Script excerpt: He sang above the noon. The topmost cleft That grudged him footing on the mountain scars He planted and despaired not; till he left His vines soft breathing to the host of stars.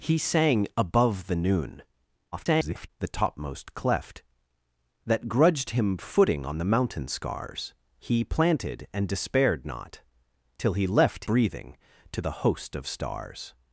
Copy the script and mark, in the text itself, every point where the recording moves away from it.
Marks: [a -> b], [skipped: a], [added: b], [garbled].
He sang above the noon. [garbled] The topmost cleft That grudged him footing on the mountain scars He planted and despaired not; till he left [skipped: His vines soft] breathing to the host of stars.